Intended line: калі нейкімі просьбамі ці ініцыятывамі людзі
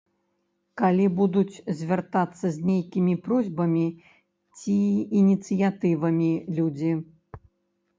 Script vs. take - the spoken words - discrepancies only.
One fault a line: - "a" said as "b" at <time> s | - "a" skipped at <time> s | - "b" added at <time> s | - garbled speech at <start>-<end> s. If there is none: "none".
- "будуць звяртацца з" added at 1.2 s